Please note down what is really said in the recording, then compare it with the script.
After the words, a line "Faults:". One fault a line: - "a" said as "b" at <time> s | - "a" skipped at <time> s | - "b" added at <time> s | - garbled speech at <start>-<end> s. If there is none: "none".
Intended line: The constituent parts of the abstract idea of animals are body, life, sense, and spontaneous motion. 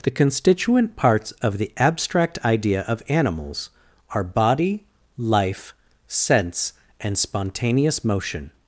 The constituent parts of the abstract idea of animals are body, life, sense, and spontaneous motion.
Faults:
none